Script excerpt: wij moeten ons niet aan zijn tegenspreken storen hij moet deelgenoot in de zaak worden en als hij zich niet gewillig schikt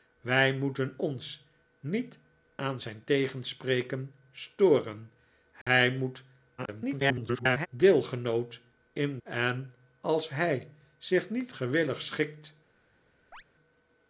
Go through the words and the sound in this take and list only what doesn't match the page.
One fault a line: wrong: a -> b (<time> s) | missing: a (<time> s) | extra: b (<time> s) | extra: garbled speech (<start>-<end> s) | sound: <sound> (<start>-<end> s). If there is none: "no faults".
sound: dropout (5.6-5.7 s)
extra: garbled speech (6.6-7.7 s)
missing: de zaak worden (9.2 s)
sound: chirp (13.3-13.4 s)